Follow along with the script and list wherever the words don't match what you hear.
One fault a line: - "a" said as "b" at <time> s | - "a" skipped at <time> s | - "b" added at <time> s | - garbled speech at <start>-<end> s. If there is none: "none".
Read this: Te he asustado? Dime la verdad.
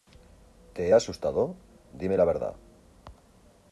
none